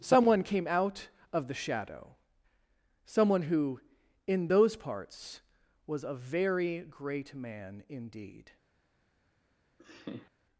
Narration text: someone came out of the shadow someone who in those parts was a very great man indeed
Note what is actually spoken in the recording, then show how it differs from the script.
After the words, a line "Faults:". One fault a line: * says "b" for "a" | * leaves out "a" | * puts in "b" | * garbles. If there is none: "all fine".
someone came out of the shadow someone who in those parts was a very great man indeed
Faults:
all fine